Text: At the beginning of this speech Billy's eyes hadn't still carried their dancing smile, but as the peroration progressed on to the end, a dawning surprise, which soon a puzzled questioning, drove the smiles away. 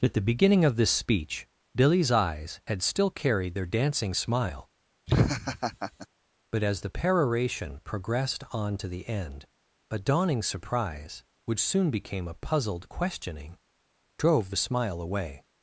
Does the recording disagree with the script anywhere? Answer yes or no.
yes